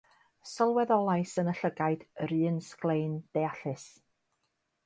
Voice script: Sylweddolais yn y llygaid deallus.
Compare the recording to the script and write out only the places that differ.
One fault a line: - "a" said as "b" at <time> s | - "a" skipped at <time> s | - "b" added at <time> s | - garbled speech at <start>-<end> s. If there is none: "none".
- "yr un sglein" added at 2.3 s